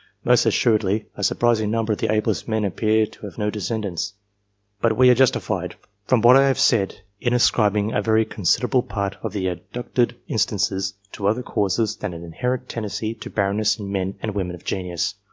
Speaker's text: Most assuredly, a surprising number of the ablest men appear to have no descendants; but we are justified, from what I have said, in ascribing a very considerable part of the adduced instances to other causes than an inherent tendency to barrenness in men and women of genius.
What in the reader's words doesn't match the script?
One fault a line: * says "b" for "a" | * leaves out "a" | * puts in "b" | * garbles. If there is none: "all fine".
all fine